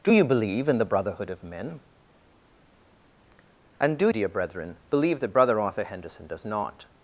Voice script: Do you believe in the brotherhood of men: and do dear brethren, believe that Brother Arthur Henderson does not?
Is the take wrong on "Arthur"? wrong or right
right